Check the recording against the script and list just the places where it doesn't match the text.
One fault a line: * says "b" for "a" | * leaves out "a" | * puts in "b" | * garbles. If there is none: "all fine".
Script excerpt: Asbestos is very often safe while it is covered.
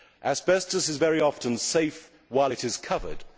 all fine